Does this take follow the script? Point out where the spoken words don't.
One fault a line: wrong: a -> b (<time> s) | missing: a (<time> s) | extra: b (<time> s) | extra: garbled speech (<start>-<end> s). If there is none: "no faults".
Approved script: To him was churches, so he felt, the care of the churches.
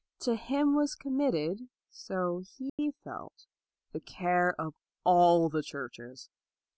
wrong: churches -> committed (0.9 s)
extra: all (5.0 s)